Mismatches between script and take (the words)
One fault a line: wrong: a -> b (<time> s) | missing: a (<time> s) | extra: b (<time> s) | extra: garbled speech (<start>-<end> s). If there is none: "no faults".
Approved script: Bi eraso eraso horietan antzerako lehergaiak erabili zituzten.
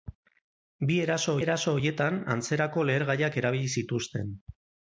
no faults